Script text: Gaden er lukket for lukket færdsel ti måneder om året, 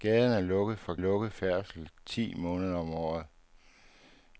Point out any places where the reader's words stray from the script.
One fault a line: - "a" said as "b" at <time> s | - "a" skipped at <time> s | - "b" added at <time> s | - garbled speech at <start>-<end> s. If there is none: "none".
none